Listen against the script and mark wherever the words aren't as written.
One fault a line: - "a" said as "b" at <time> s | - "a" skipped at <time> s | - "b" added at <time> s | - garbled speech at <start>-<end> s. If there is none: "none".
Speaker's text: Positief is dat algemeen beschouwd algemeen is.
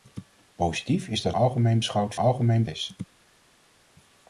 none